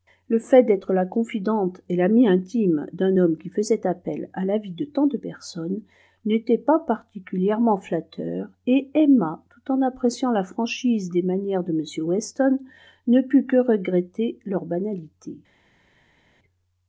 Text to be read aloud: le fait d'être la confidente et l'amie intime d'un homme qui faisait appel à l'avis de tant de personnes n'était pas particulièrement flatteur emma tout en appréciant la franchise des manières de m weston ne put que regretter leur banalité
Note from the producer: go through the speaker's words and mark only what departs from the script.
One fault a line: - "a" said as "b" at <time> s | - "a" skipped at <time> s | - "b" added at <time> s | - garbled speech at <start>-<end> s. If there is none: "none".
- "et" added at 8.7 s